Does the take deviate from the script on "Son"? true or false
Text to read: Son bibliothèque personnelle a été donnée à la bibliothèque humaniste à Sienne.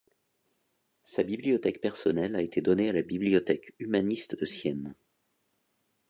true